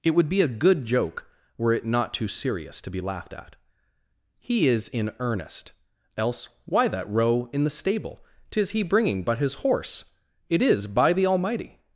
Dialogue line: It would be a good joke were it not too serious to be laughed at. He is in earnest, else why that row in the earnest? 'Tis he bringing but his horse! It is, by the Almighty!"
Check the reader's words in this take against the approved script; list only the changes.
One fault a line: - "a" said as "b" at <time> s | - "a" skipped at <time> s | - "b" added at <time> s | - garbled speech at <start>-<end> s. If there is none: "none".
- "earnest" said as "stable" at 7.7 s